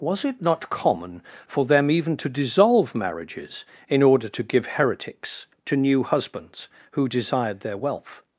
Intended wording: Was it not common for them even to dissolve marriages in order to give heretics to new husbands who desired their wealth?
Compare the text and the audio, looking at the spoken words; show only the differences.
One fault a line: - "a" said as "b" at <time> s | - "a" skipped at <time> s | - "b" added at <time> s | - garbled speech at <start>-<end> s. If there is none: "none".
none